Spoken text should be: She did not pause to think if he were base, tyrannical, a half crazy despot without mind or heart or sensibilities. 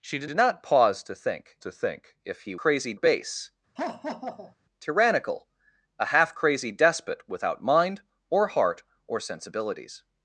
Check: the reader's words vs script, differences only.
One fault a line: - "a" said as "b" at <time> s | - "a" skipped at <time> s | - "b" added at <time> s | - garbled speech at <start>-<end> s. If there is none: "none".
- "did" added at 0.2 s
- "to think" added at 1.6 s
- "were" said as "crazy" at 2.6 s